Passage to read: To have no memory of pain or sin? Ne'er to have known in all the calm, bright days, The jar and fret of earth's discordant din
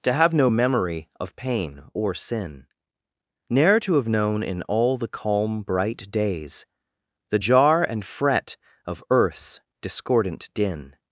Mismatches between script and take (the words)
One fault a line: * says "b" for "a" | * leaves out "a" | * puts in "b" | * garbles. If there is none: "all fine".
all fine